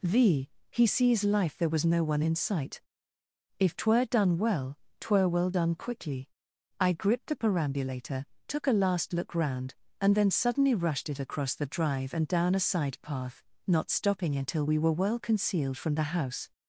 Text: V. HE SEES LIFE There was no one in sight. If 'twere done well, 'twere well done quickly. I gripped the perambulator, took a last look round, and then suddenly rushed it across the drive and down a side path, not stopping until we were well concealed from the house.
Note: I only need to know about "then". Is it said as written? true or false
true